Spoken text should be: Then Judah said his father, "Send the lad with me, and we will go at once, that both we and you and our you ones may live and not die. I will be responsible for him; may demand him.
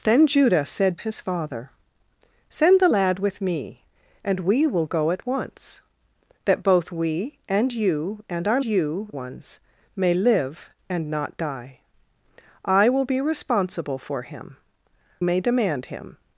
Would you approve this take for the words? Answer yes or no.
yes